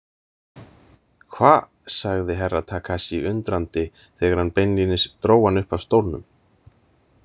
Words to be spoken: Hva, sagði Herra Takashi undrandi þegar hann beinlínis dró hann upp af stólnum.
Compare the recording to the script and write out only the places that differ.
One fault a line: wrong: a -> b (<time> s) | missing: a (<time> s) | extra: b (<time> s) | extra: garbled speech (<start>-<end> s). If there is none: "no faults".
no faults